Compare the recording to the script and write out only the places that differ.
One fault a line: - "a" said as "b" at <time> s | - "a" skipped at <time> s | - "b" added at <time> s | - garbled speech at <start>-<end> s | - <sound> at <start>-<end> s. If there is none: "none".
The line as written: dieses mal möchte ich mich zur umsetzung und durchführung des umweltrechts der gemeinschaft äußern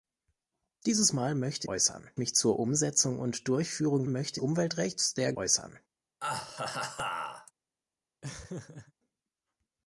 - "ich" said as "äußern" at 1.7 s
- "des" said as "möchte" at 4.1 s
- "gemeinschaft" skipped at 5.3 s
- laugh at 6.2-7.5 s
- laugh at 8.2-8.9 s